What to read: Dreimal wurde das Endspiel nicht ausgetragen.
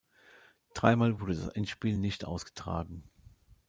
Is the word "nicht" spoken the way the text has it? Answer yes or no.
yes